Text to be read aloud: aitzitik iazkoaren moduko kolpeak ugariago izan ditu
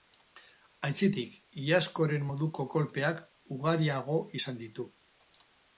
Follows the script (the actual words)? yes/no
yes